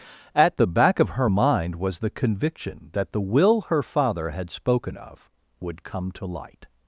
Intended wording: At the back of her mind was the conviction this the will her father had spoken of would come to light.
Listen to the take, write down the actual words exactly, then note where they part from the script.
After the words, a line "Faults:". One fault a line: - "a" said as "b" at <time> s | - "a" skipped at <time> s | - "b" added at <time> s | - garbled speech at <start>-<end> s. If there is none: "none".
At the back of her mind was the conviction that the will her father had spoken of would come to light.
Faults:
- "this" said as "that" at 2.9 s